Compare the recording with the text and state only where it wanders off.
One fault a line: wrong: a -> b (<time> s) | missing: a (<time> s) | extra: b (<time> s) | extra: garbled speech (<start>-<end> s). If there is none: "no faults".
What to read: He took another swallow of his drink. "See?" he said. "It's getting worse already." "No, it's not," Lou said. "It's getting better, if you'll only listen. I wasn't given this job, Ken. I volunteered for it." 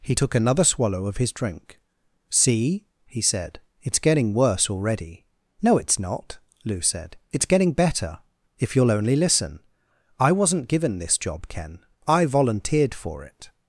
no faults